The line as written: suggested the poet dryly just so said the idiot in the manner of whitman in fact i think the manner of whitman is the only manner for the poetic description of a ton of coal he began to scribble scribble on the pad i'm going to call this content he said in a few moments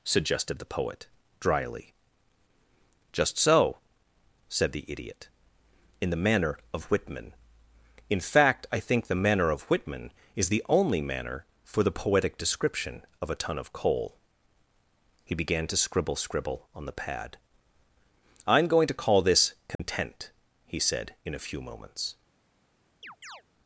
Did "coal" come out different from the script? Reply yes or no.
no